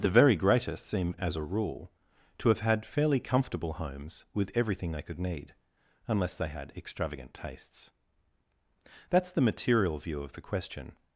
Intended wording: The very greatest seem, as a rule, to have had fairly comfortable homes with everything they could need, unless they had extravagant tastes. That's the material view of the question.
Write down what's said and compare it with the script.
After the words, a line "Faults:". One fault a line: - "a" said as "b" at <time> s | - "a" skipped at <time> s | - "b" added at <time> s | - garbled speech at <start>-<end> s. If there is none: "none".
The very greatest seem, as a rule, to have had fairly comfortable homes with everything they could need, unless they had extravagant tastes. That's the material view of the question.
Faults:
none